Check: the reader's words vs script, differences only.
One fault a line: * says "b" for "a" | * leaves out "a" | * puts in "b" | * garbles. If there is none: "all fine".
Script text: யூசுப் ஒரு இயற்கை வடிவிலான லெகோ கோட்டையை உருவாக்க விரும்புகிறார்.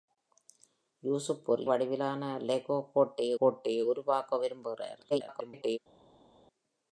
* leaves out "இயற்கை"
* puts in "கோட்டையை"
* garbles